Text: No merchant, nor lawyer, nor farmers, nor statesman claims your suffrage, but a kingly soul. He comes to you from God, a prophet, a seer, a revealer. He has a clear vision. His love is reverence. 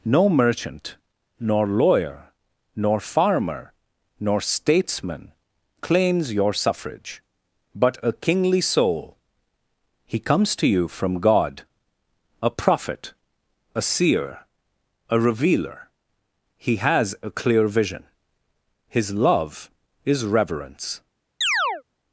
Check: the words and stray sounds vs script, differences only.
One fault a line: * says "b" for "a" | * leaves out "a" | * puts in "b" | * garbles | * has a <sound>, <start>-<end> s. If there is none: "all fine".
* says "farmer" for "farmers"
* has a chirp, 21.4-21.8 s